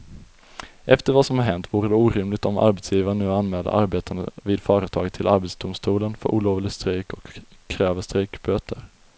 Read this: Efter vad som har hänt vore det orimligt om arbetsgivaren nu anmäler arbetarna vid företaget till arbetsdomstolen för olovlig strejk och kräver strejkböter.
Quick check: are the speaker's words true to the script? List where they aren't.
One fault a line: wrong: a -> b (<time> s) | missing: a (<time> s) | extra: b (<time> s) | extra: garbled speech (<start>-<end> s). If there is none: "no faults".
no faults